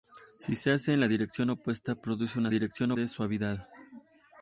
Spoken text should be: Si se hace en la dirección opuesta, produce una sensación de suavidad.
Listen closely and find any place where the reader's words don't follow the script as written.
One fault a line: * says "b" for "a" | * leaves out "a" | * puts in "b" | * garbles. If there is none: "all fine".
* says "dirección" for "sensación"